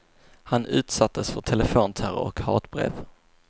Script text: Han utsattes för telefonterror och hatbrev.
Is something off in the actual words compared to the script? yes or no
no